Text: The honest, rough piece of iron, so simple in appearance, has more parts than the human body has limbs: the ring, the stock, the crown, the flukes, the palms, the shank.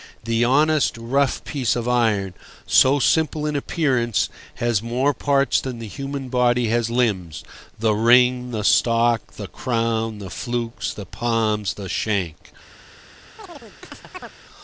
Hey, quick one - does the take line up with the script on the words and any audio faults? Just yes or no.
no